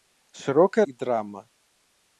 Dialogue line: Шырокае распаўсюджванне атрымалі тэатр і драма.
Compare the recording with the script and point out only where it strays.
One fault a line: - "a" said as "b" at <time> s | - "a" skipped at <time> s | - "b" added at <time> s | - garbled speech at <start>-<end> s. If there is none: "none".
- "распаўсюджванне атрымалі тэатр" skipped at 0.8 s